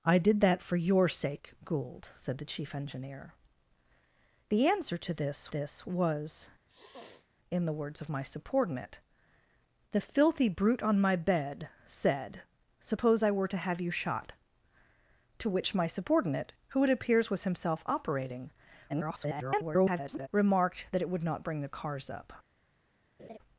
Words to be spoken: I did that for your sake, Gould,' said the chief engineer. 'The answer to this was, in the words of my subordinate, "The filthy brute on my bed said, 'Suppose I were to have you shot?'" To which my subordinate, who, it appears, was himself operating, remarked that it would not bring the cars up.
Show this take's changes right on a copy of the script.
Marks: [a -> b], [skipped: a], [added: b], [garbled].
I did that for your sake, Gould,' said the chief engineer. 'The answer to this [added: this] was, in the words of my subordinate, "The filthy brute on my bed said, 'Suppose I were to have you shot?'" To which my subordinate, who, it appears, was himself operating, [garbled] remarked that it would not bring the cars up.